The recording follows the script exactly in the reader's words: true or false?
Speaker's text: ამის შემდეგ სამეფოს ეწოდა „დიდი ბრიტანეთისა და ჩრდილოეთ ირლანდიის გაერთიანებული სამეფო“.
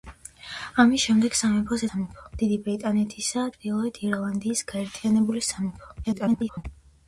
false